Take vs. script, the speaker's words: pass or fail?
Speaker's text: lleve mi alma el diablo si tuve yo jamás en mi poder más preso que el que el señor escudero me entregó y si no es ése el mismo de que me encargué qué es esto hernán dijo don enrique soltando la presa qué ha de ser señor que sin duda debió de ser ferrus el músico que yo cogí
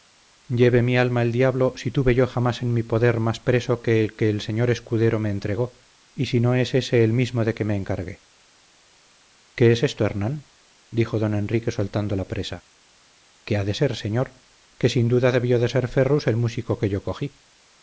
pass